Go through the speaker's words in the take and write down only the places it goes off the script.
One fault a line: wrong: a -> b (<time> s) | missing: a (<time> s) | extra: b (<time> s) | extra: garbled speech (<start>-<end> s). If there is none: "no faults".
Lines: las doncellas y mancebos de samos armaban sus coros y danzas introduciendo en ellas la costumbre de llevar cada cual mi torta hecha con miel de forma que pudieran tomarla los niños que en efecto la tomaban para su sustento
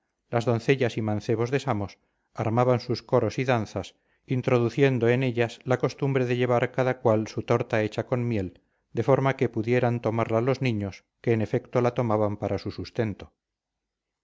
wrong: mi -> su (7.3 s)